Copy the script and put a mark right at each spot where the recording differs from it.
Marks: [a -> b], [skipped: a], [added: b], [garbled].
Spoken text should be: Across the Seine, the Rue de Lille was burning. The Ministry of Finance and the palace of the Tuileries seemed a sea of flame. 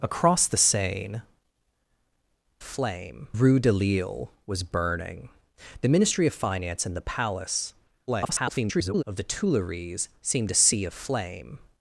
Across the Seine, [the -> flame] Rue de Lille was burning. The Ministry of Finance and the palace [garbled] of the Tuileries seemed a sea of flame.